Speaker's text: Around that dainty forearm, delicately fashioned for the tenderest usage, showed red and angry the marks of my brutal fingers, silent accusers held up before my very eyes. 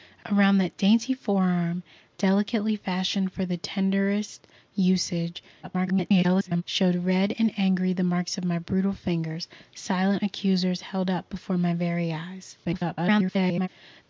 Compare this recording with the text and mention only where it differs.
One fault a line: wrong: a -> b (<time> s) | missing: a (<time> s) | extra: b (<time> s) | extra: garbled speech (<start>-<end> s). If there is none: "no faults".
extra: garbled speech (5.6-6.6 s)
extra: garbled speech (12.6-13.7 s)